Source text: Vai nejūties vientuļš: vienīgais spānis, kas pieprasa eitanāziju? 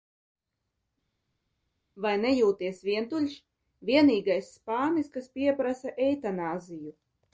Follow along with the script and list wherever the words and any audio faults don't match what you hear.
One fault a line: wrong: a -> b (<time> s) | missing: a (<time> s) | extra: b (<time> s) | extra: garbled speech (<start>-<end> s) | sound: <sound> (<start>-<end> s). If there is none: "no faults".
no faults